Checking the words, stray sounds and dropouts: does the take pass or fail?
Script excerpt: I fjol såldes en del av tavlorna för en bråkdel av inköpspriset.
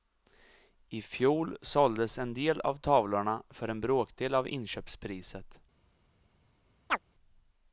fail